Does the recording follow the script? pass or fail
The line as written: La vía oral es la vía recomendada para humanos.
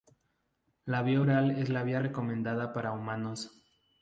pass